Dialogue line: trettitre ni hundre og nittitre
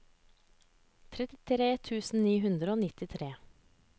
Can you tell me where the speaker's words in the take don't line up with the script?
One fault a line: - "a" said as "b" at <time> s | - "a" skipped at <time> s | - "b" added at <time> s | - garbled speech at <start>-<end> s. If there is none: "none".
- "tusen" added at 1.9 s